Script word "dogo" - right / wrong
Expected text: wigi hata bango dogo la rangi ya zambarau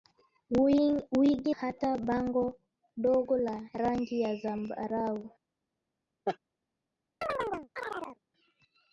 right